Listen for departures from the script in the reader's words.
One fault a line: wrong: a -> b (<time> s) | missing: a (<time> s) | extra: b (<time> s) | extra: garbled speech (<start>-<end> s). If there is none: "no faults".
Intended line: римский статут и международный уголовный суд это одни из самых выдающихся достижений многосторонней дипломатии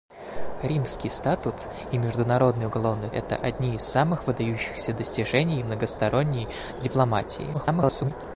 missing: суд (3.1 s)
extra: garbled speech (7.5-8.1 s)